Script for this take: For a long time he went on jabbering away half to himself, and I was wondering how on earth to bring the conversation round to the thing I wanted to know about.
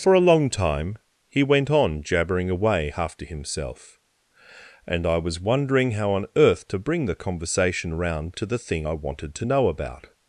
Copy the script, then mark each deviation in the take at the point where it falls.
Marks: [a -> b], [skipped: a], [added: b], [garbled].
For a long time he went on jabbering away half to himself, and I was wondering how on earth to bring the conversation round to the thing I wanted to know about.